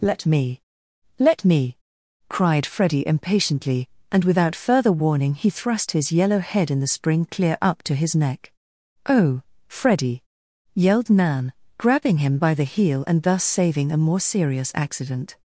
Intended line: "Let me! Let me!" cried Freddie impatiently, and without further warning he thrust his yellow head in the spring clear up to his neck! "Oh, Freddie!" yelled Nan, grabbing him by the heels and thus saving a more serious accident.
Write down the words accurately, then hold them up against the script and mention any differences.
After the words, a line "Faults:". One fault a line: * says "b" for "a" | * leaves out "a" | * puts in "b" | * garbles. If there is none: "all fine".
"Let me! Let me!" cried Freddie impatiently, and without further warning he thrust his yellow head in the spring clear up to his neck! "Oh, Freddie!" yelled Nan, grabbing him by the heel and thus saving a more serious accident.
Faults:
* says "heel" for "heels"